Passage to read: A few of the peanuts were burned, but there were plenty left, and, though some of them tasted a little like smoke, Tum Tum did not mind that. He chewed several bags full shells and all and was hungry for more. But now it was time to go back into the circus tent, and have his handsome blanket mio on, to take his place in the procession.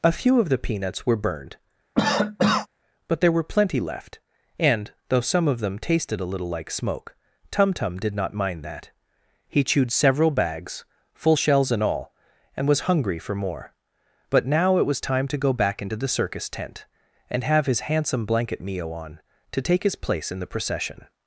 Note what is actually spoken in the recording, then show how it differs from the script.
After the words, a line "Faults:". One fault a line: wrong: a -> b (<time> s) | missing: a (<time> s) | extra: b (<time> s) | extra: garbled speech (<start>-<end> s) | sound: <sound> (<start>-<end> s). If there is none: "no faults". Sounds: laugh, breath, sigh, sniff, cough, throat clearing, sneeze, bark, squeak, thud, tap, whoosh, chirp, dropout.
A few of the peanuts were burned, but there were plenty left, and, though some of them tasted a little like smoke, Tum Tum did not mind that. He chewed several bags full shells and all and was hungry for more. But now it was time to go back into the circus tent, and have his handsome blanket mio on, to take his place in the procession.
Faults:
sound: cough (2.0-2.7 s)